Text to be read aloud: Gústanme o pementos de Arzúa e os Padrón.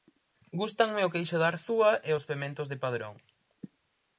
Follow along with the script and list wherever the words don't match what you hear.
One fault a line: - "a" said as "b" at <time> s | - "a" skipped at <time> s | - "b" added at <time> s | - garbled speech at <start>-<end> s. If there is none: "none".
- "pementos" said as "queixo" at 1.1 s
- "pementos de" added at 2.3 s